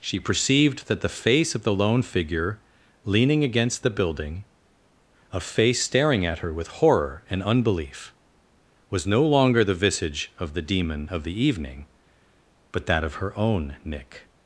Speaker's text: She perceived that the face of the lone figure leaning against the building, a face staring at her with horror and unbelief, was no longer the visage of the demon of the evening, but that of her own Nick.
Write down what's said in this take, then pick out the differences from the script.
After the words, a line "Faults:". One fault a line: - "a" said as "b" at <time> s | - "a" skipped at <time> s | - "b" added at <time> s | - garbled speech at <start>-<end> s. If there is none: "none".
She perceived that the face of the lone figure leaning against the building, a face staring at her with horror and unbelief, was no longer the visage of the demon of the evening, but that of her own Nick.
Faults:
none